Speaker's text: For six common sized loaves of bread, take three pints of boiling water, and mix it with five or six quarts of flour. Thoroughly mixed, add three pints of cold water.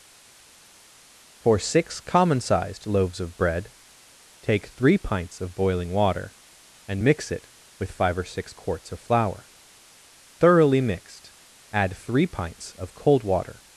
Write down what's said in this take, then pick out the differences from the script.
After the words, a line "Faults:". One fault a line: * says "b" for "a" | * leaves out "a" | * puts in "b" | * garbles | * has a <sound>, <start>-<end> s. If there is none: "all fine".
For six common sized loaves of bread, take three pints of boiling water, and mix it with five or six quarts of flour. Thoroughly mixed, add three pints of cold water.
Faults:
all fine